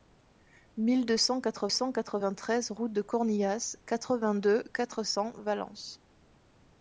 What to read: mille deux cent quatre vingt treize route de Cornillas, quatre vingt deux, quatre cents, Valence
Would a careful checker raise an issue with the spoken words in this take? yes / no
yes